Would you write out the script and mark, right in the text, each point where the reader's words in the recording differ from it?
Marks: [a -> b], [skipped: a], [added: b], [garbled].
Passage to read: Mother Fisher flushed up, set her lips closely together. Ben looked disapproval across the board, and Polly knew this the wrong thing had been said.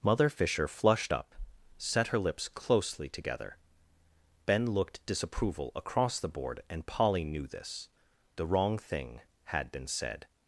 Mother Fisher flushed up, set her lips closely together. Ben looked disapproval across the board, and Polly knew this the wrong thing had been said.